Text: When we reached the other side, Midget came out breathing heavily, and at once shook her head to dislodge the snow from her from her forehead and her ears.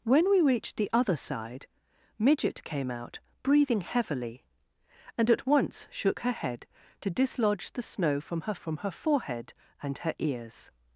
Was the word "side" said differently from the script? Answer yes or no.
no